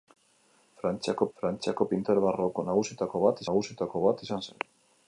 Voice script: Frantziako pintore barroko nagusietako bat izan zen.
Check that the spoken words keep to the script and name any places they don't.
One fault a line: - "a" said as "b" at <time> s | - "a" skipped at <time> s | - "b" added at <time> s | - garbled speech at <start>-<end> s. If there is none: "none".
- "frantziako" added at 1.4 s
- "nagusietako bat" added at 3.5 s